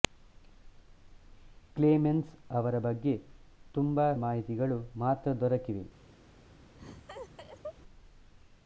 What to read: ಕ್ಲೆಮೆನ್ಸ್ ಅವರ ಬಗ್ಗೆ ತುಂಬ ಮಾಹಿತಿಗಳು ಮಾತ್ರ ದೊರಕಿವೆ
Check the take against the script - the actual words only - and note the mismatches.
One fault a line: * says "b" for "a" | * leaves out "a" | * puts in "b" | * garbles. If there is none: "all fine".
all fine